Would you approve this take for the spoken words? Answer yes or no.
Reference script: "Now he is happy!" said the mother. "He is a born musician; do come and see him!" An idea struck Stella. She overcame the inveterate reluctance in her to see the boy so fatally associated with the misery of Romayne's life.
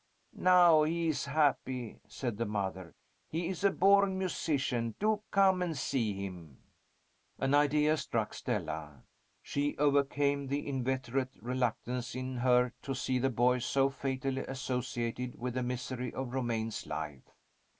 yes